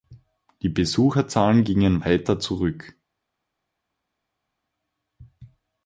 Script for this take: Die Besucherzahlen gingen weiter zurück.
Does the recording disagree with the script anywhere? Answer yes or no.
no